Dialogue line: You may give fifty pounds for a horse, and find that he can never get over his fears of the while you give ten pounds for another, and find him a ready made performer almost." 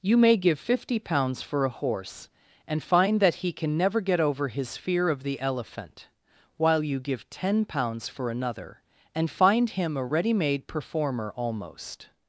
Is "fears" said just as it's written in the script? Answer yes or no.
no